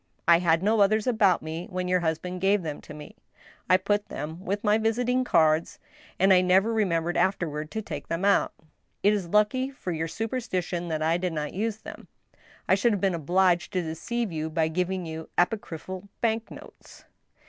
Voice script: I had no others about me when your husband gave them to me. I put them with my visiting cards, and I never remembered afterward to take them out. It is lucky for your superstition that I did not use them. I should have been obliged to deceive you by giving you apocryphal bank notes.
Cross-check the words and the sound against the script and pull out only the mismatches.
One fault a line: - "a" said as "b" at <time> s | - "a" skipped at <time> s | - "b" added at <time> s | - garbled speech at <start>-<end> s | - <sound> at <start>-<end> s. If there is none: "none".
none